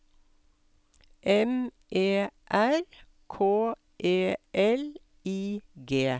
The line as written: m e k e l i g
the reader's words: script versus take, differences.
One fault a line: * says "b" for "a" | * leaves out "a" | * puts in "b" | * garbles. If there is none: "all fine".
* puts in "r"